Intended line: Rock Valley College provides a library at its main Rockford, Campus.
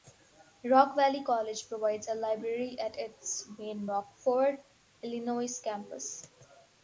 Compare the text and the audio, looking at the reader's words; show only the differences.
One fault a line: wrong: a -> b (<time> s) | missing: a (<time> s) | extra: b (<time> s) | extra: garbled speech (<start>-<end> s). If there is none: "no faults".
extra: Illinois (5.0 s)